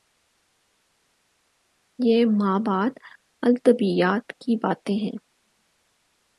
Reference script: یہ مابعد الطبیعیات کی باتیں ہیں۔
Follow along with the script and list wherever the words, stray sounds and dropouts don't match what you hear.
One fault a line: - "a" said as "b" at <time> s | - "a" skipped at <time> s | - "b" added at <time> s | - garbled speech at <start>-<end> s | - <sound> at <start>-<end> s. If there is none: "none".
none